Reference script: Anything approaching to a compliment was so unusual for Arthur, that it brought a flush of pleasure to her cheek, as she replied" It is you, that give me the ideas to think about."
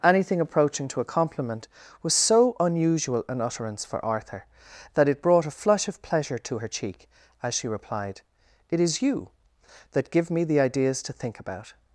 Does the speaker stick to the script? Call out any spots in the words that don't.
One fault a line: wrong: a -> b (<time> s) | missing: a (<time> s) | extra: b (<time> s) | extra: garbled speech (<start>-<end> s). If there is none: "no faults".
extra: an utterance (3.3 s)